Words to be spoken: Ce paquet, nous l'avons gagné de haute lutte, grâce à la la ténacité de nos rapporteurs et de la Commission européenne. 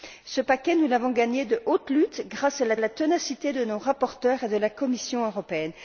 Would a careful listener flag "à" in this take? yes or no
no